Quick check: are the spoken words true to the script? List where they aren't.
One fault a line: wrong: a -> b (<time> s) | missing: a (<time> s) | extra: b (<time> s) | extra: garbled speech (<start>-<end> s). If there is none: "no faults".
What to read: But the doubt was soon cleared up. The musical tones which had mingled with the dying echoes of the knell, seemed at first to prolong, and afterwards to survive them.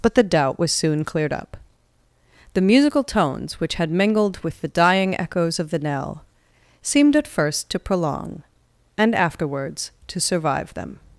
no faults